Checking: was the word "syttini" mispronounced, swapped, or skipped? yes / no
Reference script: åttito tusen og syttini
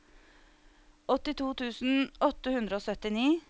no